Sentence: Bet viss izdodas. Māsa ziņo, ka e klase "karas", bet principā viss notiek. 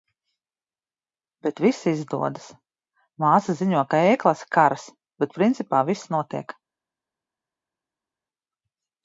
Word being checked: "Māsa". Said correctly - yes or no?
yes